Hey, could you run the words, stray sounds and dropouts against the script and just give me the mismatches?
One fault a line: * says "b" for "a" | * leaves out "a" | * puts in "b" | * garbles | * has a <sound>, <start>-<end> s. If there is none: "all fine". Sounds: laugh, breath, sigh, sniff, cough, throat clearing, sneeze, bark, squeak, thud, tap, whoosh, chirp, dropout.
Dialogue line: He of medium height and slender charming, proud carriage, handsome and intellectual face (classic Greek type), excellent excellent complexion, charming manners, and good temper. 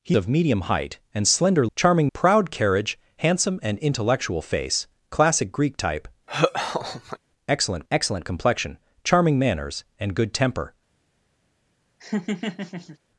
* has a laugh, 6.3-7.2 s
* has a laugh, 12.0-13.0 s